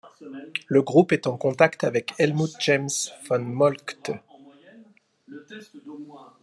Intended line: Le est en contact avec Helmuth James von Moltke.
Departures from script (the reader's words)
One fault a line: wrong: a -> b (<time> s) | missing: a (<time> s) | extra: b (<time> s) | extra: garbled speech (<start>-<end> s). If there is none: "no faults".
extra: groupe (0.8 s)